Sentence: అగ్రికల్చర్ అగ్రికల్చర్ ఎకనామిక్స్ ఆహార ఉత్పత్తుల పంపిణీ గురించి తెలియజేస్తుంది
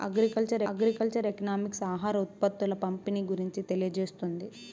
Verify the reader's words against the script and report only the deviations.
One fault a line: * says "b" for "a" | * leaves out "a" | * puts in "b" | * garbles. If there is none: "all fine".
all fine